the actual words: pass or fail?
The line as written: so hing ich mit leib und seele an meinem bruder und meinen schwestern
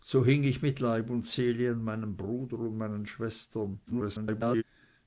fail